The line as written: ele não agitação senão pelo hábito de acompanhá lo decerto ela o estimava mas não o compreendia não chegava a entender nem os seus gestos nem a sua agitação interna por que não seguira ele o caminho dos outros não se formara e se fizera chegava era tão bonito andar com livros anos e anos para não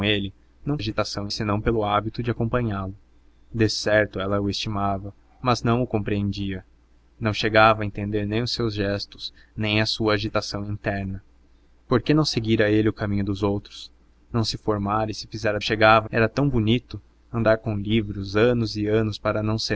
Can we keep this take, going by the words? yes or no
yes